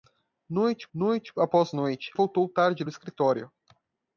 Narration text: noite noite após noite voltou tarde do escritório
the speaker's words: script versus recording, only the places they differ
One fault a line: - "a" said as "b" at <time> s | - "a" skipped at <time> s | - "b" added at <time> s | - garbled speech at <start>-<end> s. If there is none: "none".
none